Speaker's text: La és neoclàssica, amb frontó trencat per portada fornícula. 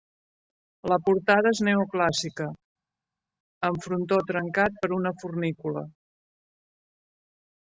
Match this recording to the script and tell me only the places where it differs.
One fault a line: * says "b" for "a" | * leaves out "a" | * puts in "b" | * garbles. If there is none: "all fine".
* puts in "portada"
* says "una" for "portada"